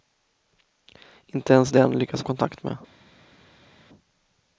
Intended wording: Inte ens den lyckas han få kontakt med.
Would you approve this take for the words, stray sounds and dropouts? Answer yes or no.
no